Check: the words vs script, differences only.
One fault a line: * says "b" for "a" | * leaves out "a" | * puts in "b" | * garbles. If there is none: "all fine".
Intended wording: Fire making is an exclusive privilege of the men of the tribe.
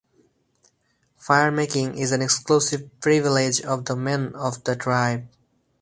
all fine